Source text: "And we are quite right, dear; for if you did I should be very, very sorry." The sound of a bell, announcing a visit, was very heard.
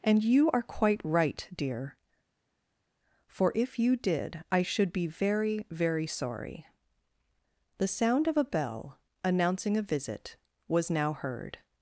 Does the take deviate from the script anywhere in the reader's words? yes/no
yes